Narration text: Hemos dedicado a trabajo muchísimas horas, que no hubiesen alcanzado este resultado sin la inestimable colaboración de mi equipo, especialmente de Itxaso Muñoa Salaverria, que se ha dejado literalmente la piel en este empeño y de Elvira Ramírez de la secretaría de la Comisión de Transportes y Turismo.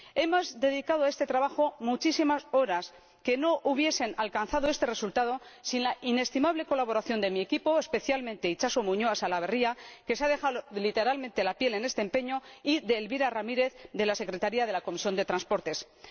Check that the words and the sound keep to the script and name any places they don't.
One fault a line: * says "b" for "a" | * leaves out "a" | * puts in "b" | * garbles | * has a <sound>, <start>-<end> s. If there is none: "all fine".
* puts in "este"